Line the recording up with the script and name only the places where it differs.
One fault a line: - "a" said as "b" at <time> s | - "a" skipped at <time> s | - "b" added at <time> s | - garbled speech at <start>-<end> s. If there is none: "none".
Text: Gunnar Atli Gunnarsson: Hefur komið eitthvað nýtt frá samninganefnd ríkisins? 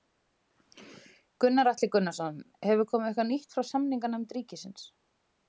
none